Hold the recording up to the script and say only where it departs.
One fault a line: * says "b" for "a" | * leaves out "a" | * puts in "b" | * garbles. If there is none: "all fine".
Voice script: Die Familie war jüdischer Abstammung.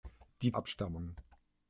* leaves out "Familie war jüdischer"